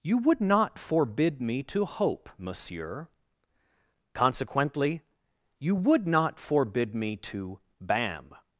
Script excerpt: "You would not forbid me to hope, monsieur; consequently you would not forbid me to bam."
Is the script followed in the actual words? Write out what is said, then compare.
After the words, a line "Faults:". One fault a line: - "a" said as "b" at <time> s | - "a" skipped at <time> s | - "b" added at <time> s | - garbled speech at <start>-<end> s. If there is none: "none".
"You would not forbid me to hope, monsieur; consequently you would not forbid me to bam."
Faults:
none